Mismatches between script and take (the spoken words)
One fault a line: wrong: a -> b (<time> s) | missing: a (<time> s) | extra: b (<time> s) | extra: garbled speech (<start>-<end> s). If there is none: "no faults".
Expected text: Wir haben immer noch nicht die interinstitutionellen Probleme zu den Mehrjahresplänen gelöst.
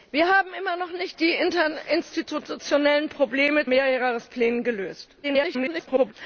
missing: zu den (3.7 s)
extra: garbled speech (5.2-6.1 s)